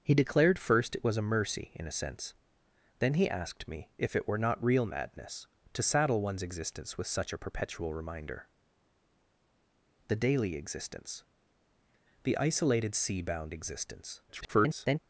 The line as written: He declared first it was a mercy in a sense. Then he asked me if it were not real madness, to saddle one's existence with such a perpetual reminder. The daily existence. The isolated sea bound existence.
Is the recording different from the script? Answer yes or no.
yes